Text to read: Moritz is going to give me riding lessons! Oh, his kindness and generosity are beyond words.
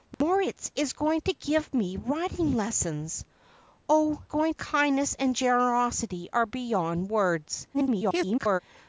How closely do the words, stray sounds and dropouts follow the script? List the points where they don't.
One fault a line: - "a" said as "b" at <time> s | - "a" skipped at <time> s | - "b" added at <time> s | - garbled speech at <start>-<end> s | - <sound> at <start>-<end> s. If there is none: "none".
- dropout at 0.1-0.2 s
- "his" said as "going" at 4.3 s
- garbled speech at 7.7-8.6 s